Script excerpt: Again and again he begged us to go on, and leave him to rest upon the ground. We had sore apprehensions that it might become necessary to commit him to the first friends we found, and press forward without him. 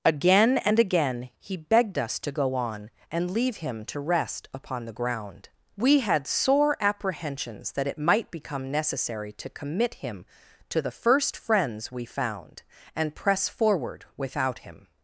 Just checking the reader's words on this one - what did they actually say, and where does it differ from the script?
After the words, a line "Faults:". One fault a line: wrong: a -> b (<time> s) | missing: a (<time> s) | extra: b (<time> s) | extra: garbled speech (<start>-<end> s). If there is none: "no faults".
Again and again he begged us to go on, and leave him to rest upon the ground. We had sore apprehensions that it might become necessary to commit him to the first friends we found, and press forward without him.
Faults:
no faults